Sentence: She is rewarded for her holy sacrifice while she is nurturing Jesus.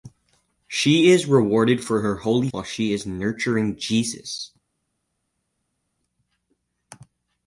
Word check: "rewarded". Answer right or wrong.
right